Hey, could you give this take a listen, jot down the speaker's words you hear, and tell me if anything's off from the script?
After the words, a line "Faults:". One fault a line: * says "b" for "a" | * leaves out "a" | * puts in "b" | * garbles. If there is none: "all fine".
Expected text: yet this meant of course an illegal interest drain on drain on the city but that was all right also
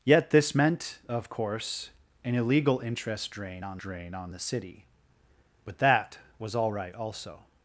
yet this meant of course an illegal interest drain on drain on the city but that was all right also
Faults:
all fine